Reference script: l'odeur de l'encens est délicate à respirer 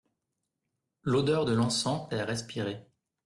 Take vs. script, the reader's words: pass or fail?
fail